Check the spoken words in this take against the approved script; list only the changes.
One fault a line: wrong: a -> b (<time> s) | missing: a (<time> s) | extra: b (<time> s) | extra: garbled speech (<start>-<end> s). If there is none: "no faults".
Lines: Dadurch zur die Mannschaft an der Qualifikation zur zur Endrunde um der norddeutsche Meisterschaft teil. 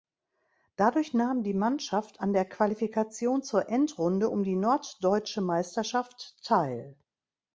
wrong: zur -> nahm (1.1 s)
missing: zur (3.7 s)
wrong: der -> die (4.4 s)